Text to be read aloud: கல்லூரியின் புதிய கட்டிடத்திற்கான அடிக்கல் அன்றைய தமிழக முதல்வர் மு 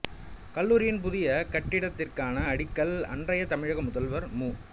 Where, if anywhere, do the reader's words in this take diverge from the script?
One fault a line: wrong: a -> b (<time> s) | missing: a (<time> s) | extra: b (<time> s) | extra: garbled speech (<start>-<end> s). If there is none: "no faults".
no faults